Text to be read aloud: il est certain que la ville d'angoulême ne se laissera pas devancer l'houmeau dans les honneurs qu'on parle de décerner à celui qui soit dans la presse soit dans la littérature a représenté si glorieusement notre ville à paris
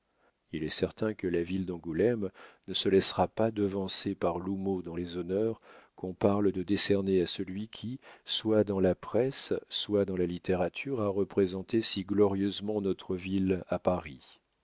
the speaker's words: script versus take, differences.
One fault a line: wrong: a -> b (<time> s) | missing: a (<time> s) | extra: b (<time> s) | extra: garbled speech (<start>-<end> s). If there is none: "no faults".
extra: par (4.2 s)